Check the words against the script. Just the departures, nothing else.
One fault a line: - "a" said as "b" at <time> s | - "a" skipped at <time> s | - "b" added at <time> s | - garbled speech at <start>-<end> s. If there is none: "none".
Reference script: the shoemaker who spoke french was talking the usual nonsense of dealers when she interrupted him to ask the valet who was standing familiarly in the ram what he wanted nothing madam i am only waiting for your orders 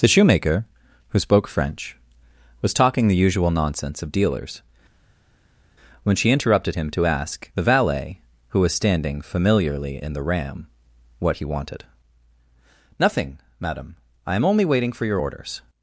none